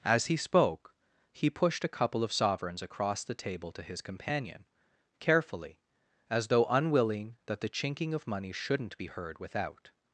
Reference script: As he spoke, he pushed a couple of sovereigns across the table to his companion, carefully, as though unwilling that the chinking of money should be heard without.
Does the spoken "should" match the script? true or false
false